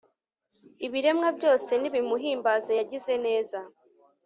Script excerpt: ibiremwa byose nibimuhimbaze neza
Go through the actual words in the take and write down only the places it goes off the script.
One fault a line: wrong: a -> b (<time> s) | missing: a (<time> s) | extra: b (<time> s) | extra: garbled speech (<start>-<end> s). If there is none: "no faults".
extra: yagize (2.8 s)